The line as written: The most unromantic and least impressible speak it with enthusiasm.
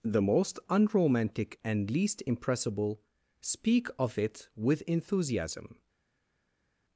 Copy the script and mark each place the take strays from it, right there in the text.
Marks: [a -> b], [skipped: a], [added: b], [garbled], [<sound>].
The most unromantic and least impressible speak [added: of] it with enthusiasm.